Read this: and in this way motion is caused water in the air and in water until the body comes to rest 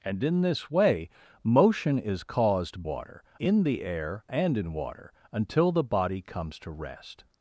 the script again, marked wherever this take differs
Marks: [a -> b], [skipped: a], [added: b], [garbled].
and in this way motion is caused water in the air and in water until the body comes to rest